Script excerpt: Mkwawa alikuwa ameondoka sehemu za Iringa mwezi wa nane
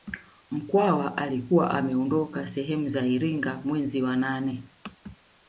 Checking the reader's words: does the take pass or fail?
pass